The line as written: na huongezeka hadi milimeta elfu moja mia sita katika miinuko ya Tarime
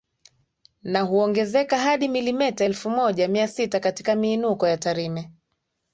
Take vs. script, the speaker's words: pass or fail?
pass